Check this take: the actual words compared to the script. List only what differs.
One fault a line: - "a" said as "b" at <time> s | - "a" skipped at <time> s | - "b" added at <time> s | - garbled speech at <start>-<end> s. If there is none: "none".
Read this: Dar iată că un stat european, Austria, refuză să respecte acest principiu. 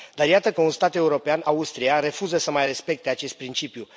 - "mai" added at 2.5 s